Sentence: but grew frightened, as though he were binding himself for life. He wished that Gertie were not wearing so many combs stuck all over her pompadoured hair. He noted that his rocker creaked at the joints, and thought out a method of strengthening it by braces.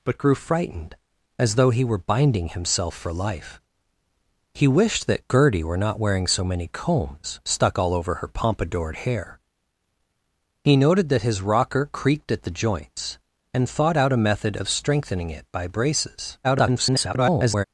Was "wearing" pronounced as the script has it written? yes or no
yes